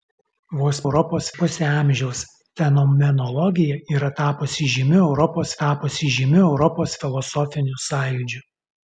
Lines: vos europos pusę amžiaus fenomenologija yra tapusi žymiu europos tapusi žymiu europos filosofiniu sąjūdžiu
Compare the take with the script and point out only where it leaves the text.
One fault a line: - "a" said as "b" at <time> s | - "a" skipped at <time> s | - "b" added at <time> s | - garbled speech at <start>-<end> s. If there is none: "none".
none